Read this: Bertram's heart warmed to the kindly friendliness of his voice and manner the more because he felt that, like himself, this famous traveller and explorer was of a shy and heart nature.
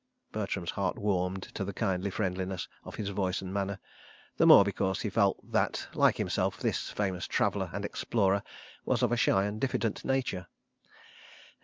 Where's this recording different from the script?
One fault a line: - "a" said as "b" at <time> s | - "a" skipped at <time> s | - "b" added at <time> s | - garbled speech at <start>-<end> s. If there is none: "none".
- "heart" said as "diffident" at 9.6 s